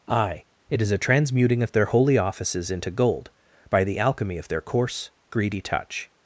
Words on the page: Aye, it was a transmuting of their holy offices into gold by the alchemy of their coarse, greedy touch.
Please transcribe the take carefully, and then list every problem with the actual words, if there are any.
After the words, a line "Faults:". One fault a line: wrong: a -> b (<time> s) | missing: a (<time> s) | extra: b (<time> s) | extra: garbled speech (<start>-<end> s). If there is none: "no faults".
Aye, it is a transmuting of their holy offices into gold by the alchemy of their coarse, greedy touch.
Faults:
wrong: was -> is (0.8 s)